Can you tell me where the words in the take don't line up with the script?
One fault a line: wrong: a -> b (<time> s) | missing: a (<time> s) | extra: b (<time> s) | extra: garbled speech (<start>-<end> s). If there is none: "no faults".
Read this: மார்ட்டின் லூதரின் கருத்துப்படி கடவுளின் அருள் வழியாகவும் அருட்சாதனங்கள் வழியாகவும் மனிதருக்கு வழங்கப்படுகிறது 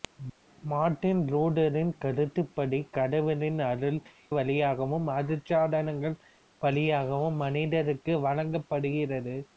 no faults